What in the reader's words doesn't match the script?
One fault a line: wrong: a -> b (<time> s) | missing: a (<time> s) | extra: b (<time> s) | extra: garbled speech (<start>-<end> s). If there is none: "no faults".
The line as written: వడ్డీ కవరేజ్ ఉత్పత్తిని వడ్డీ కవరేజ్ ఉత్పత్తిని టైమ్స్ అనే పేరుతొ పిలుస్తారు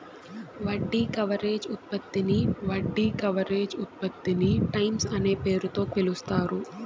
no faults